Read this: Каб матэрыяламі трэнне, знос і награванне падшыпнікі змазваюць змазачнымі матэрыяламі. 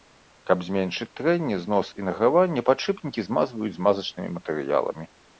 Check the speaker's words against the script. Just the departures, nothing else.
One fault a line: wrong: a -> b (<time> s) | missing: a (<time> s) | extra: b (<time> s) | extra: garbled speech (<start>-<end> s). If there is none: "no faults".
wrong: матэрыяламі -> зменшыць (0.7 s)